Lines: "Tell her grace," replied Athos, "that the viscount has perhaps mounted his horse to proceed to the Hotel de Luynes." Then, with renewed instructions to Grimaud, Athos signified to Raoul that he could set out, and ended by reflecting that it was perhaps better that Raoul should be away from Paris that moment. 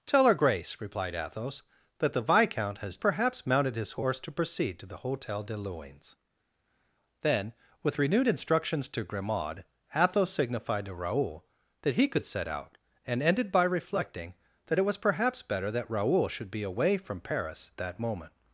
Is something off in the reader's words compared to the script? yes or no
no